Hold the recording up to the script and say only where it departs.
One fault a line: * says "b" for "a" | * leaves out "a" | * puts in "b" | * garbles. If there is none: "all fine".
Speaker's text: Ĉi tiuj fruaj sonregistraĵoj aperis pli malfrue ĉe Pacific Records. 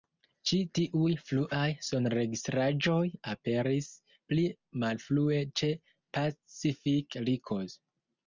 all fine